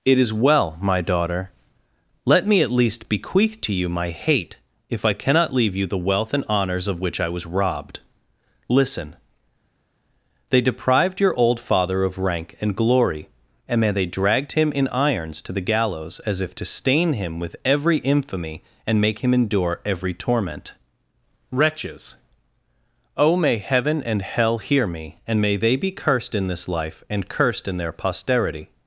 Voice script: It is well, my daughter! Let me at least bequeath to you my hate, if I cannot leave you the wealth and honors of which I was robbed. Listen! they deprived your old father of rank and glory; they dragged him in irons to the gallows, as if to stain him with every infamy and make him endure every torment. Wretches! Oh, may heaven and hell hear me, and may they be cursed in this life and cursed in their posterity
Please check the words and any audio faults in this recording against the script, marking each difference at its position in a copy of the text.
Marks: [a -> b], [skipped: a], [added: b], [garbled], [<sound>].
It is well, my daughter! Let me at least bequeath to you my hate, if I cannot leave you the wealth and honors of which I was robbed. Listen! they deprived your old father of rank and glory; [added: and may] they dragged him in irons to the gallows, as if to stain him with every infamy and make him endure every torment. Wretches! Oh, may heaven and hell hear me, and may they be cursed in this life and cursed in their posterity